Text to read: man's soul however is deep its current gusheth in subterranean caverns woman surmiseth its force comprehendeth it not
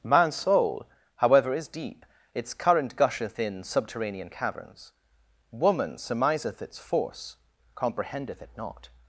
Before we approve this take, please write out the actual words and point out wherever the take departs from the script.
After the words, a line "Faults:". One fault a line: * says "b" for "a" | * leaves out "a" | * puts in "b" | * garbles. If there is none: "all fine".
man's soul however is deep its current gusheth in subterranean caverns woman surmiseth its force comprehendeth it not
Faults:
all fine